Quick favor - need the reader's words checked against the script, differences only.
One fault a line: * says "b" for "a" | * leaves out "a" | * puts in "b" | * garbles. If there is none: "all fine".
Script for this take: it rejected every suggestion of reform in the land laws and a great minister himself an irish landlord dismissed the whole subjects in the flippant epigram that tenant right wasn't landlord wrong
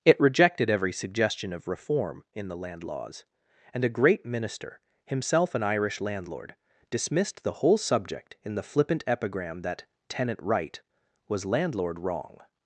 * says "subject" for "subjects"
* says "was" for "wasn't"